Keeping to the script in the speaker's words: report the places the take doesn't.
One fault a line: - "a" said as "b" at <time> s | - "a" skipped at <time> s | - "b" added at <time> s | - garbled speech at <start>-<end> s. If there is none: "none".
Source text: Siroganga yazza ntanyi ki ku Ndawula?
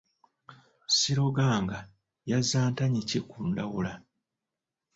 none